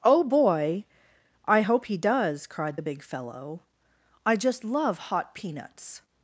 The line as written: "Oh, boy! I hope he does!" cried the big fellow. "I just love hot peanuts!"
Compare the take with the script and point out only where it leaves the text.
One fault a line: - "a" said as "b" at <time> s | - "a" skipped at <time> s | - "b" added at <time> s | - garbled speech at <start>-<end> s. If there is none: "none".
none